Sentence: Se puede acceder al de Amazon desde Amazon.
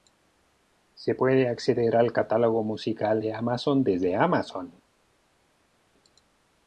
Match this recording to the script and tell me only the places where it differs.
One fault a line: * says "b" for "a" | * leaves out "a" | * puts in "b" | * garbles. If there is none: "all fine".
* puts in "catálogo musical"